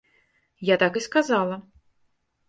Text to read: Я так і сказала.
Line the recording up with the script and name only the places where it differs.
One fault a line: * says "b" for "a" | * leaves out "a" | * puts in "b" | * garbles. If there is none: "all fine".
all fine